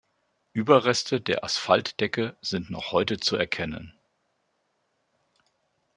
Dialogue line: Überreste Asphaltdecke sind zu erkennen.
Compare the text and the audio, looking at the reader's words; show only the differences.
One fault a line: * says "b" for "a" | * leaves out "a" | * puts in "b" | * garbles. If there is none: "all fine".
* puts in "der"
* puts in "noch heute"